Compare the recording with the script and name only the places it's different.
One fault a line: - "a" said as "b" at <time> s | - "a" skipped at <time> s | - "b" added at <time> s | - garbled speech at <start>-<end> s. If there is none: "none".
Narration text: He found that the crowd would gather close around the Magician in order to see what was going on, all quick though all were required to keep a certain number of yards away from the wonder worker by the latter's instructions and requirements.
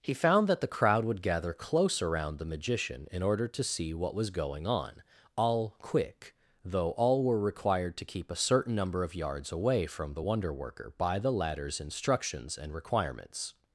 none